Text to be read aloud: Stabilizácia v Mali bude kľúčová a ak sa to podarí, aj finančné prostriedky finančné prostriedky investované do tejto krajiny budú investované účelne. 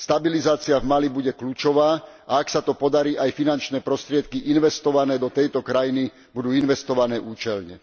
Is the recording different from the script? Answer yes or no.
yes